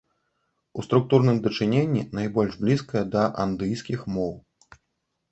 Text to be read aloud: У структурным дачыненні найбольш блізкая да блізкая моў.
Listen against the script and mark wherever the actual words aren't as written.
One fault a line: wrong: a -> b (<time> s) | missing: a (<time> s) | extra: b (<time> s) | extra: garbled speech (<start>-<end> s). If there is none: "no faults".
wrong: блізкая -> андыйскіх (3.5 s)